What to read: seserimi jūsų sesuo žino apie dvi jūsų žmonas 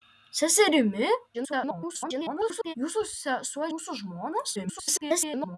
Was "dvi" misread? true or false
true